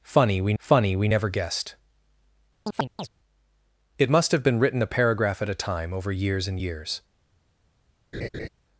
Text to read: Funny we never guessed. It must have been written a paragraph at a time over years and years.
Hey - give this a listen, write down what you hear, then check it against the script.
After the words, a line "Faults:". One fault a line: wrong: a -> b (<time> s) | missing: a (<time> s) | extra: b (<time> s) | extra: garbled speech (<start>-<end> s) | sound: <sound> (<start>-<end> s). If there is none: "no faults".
Funny we funny we never guessed. It must have been written a paragraph at a time over years and years.
Faults:
extra: funny we (0.6 s)
sound: chirp (2.7-3.1 s)
sound: laugh (8.1-8.5 s)